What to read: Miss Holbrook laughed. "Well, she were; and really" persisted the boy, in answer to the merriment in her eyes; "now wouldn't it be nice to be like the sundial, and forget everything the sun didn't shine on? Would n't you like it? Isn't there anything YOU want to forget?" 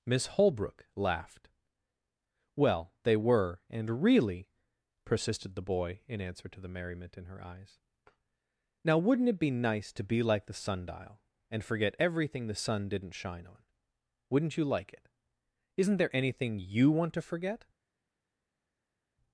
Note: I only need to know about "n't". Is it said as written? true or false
true